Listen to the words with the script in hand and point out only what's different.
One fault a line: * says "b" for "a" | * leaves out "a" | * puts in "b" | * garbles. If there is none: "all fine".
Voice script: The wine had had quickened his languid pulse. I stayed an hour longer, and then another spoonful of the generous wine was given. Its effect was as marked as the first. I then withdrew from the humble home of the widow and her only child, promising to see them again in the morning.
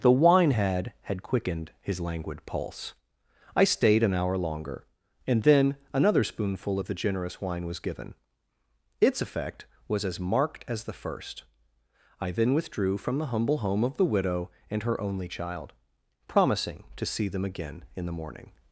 all fine